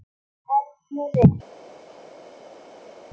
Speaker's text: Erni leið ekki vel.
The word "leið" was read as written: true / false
false